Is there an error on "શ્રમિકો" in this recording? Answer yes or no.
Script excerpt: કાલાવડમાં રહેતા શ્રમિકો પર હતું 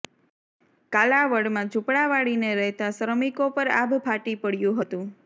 no